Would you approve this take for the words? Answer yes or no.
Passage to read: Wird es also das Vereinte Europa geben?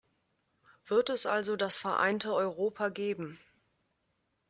yes